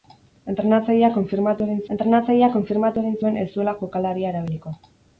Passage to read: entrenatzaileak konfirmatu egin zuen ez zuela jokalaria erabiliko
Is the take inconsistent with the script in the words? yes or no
yes